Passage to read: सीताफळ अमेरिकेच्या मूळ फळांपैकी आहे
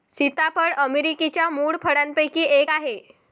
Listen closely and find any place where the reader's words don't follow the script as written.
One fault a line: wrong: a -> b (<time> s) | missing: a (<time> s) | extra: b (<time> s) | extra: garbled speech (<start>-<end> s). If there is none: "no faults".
extra: एक (2.4 s)